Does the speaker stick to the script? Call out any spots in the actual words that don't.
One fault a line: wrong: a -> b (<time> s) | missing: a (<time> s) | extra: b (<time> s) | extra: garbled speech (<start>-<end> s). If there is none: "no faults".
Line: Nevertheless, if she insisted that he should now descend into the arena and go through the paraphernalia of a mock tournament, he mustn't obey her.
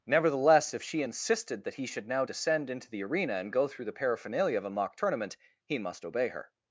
wrong: mustn't -> must (5.8 s)